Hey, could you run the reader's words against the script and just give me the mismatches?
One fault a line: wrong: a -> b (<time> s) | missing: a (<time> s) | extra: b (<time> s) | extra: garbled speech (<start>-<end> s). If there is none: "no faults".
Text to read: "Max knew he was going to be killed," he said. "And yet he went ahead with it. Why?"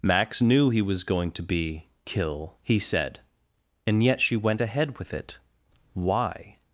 wrong: killed -> kill (2.0 s)
wrong: he -> she (4.2 s)